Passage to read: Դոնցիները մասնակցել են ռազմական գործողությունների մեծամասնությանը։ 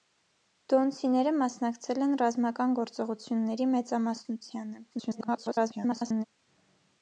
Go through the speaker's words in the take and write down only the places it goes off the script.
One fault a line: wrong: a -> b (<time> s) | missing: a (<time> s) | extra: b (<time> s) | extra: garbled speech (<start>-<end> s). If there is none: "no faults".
extra: garbled speech (4.9-6.2 s)